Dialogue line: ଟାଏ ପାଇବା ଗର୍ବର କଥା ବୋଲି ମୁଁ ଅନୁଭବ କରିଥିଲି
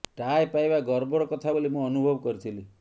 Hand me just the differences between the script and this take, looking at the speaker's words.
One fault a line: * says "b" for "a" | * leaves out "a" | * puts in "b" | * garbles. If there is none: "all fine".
all fine